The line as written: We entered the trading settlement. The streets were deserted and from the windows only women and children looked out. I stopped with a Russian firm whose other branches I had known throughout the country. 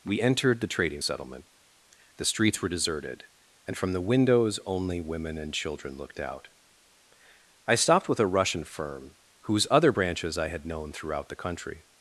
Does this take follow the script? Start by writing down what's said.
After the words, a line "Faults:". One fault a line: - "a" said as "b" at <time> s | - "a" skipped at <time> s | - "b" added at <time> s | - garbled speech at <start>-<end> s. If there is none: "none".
We entered the trading settlement. The streets were deserted and from the windows only women and children looked out. I stopped with a Russian firm whose other branches I had known throughout the country.
Faults:
none